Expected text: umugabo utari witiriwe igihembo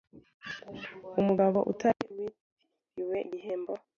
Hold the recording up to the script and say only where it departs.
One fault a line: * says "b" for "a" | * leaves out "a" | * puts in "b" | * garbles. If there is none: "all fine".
all fine